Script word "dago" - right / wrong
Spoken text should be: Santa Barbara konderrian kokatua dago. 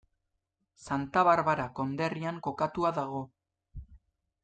right